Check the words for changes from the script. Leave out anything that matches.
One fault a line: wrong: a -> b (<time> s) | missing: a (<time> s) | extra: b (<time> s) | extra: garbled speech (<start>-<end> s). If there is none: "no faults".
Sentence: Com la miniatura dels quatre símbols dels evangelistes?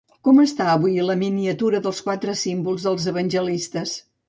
extra: està avui (0.4 s)